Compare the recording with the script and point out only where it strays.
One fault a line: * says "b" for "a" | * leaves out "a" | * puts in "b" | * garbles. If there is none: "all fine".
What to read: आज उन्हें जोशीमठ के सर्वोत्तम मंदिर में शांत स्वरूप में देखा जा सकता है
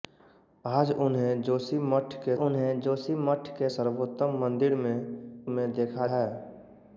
* puts in "उन्हें जोशीमठ के"
* leaves out "शांत स्वरूप"
* leaves out "जा सकता"